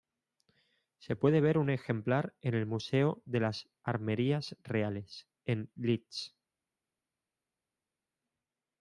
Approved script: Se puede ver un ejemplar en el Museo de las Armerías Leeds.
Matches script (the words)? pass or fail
fail